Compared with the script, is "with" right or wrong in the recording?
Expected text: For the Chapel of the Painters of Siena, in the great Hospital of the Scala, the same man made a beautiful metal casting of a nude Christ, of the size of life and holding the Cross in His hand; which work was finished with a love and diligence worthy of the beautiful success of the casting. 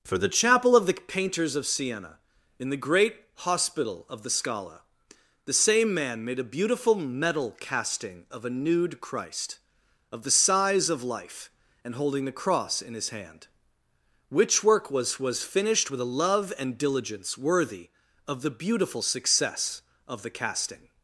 right